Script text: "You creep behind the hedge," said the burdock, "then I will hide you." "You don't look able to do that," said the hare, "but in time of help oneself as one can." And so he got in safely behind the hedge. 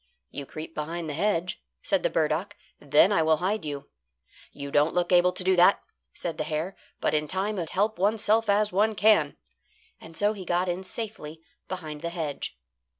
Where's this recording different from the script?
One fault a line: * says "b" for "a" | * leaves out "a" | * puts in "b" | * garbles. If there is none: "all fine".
all fine